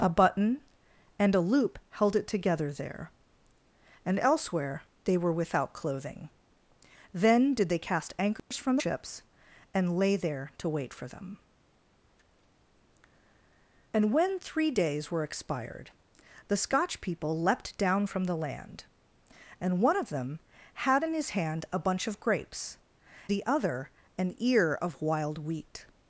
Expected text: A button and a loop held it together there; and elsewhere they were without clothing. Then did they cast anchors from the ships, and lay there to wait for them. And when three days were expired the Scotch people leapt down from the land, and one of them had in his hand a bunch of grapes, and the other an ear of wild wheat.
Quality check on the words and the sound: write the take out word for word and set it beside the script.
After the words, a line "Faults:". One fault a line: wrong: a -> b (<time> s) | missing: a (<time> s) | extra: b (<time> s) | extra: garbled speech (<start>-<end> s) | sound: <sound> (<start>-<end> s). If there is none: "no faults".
A button and a loop held it together there; and elsewhere they were without clothing. Then did they cast anchors from ships, and lay there to wait for them. And when three days were expired the Scotch people leapt down from the land, and one of them had in his hand a bunch of grapes, the other an ear of wild wheat.
Faults:
sound: dropout (8.4-8.5 s)
missing: the (8.8 s)
missing: and (22.8 s)